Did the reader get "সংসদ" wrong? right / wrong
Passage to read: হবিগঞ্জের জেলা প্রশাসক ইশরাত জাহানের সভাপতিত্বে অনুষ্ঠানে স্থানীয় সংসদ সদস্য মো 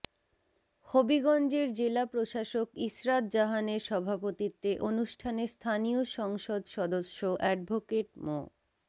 right